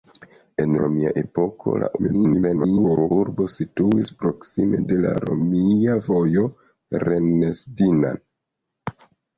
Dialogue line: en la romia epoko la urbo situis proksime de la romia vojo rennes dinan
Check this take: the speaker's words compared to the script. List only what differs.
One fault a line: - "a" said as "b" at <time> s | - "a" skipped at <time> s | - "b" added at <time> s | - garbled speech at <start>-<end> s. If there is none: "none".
- "la" skipped at 0.7 s
- garbled speech at 2.0-3.1 s